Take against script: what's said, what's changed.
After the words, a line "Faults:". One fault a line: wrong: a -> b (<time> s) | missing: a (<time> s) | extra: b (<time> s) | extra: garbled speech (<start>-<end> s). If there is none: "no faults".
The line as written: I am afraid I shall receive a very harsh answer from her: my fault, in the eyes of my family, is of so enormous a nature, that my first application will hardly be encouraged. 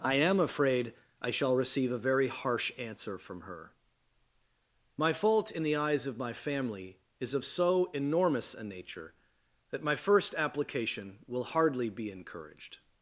I am afraid I shall receive a very harsh answer from her: my fault, in the eyes of my family, is of so enormous a nature, that my first application will hardly be encouraged.
Faults:
no faults